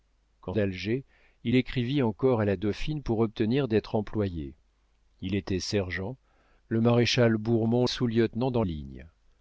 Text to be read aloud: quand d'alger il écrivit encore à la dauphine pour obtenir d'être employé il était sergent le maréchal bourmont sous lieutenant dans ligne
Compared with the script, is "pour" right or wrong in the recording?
right